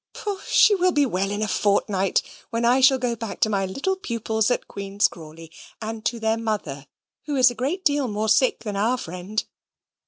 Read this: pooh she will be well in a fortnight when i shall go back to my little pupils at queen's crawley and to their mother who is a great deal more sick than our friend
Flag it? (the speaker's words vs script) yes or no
no